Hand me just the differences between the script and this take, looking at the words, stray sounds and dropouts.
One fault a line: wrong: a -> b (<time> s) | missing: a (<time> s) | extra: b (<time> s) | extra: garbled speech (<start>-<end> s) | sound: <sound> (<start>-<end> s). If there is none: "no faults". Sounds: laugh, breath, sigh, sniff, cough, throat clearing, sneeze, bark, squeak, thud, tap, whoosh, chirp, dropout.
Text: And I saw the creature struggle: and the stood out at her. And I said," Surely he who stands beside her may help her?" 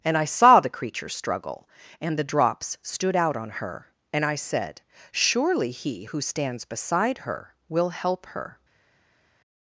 extra: drops (2.2 s)
wrong: at -> on (3.3 s)
wrong: may -> will (7.7 s)